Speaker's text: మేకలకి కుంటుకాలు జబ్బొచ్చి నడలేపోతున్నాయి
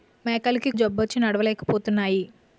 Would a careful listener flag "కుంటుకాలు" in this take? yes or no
yes